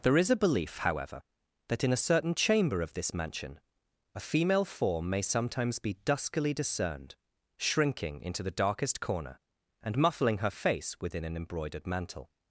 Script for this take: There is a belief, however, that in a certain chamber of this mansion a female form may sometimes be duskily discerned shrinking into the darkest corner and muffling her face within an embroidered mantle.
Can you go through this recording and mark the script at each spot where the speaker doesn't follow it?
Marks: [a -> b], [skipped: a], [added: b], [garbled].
There is a belief, however, that in a certain chamber of this mansion a female form may sometimes be duskily discerned shrinking into the darkest corner and muffling her face within an embroidered mantle.